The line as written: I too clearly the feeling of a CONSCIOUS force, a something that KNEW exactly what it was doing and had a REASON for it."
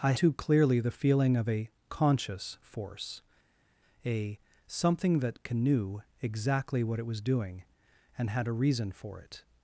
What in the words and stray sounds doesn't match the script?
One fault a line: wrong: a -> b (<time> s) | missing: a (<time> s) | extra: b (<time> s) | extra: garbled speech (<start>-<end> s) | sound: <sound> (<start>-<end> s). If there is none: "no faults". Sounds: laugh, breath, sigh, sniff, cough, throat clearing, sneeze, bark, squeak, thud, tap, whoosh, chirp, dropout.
no faults